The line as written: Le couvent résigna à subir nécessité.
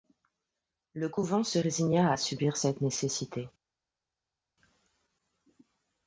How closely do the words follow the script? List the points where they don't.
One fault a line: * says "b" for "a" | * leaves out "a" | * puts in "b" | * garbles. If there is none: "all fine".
* puts in "se"
* puts in "cette"